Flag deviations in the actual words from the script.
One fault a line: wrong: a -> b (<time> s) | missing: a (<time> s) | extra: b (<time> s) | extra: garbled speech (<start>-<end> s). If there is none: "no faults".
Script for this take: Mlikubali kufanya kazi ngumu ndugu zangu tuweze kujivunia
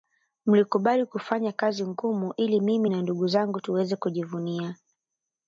extra: ili mimi na (2.4 s)